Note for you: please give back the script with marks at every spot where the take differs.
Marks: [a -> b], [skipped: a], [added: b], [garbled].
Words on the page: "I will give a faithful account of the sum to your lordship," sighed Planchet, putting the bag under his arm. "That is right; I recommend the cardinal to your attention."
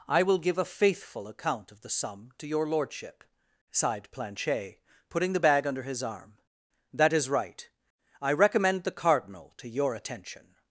"I will give a faithful account of the sum to your lordship," sighed Planchet, putting the bag under his arm. "That is right; I recommend the cardinal to your attention."